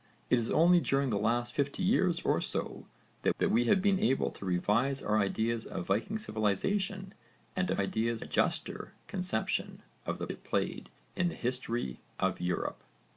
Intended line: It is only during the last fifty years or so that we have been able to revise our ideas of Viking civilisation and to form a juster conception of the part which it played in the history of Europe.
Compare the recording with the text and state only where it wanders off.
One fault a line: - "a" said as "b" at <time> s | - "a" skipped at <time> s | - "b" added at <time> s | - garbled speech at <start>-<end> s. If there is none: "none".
- "that" added at 3.4 s
- "form" said as "ideas" at 7.8 s
- "part which" skipped at 10.3 s